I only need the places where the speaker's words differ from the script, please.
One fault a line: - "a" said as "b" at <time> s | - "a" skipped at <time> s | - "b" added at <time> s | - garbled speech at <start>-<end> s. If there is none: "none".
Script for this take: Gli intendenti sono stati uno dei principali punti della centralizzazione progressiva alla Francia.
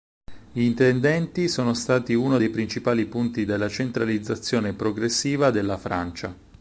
- "alla" said as "della" at 5.5 s